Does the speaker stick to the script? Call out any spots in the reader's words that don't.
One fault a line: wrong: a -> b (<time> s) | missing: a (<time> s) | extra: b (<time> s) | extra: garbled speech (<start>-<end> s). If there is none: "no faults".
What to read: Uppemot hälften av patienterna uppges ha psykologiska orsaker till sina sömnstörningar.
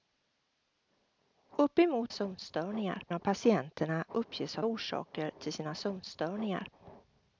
wrong: hälften -> sömnstörningar (2.1 s)
missing: psykologiska (4.6 s)